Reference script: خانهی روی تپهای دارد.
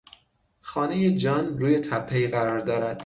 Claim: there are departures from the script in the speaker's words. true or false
true